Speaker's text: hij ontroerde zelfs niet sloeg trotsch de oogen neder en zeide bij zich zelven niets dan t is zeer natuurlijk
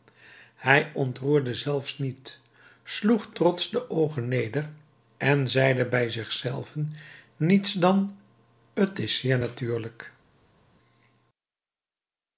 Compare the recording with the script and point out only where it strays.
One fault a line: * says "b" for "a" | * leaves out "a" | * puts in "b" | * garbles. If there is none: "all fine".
all fine